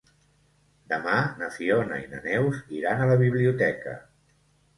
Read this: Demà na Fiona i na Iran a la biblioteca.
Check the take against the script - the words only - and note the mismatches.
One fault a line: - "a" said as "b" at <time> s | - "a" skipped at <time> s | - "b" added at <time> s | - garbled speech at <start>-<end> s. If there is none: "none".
- "Neus" added at 2.3 s